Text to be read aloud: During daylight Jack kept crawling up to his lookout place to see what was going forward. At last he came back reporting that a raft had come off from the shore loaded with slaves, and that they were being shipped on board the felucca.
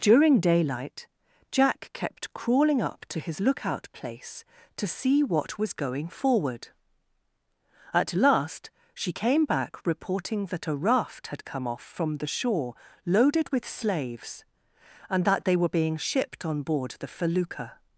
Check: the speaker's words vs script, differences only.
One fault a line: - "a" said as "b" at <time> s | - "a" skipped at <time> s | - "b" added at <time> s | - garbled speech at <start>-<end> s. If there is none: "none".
- "he" said as "she" at 8.9 s